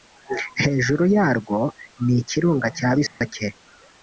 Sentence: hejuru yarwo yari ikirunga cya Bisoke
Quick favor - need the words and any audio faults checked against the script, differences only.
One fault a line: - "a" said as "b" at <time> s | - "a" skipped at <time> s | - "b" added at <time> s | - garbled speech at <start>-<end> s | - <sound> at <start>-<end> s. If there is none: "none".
- "yari" said as "ni" at 2.0 s
- dropout at 3.1-3.2 s